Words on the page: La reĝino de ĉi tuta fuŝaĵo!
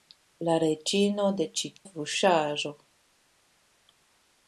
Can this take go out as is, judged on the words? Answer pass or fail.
fail